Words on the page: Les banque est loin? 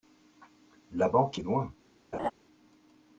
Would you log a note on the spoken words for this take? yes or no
yes